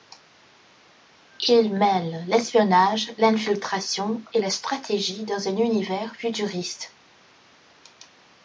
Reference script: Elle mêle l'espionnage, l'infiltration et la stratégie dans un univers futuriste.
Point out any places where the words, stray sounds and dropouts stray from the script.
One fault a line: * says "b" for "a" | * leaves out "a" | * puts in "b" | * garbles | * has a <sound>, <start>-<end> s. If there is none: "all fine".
* says "Il" for "Elle"